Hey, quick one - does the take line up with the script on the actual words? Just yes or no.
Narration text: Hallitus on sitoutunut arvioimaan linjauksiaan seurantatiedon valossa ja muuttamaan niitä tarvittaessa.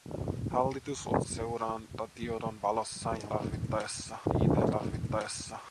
no